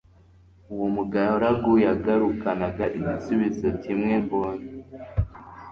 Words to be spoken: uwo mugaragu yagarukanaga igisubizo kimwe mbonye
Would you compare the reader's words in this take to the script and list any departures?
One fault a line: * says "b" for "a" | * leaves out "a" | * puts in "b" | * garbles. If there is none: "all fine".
all fine